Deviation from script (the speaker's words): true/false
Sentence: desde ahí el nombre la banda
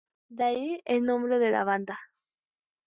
true